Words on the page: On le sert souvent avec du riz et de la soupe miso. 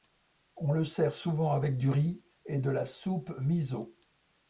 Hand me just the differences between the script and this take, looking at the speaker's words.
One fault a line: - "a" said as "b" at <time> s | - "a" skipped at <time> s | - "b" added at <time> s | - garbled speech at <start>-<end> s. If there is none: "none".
none